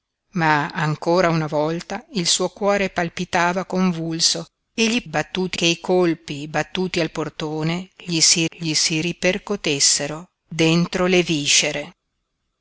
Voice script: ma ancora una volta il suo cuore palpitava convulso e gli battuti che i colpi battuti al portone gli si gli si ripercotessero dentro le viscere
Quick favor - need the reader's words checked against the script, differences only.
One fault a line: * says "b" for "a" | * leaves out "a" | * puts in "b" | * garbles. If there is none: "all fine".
all fine